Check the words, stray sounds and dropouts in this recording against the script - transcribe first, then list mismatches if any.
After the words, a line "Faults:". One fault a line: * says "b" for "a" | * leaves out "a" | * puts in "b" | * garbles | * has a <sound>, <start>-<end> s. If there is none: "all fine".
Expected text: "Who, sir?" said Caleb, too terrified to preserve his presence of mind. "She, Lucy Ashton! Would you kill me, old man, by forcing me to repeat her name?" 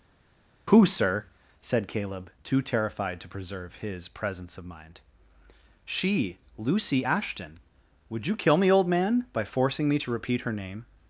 "Who, sir?" said Caleb, too terrified to preserve his presence of mind. "She, Lucy Ashton! Would you kill me, old man, by forcing me to repeat her name?"
Faults:
all fine